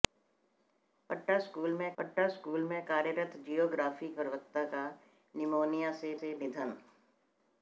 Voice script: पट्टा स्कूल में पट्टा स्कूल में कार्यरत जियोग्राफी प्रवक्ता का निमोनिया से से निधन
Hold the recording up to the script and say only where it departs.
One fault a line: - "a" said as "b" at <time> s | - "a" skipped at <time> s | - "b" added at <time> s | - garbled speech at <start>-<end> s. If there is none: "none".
none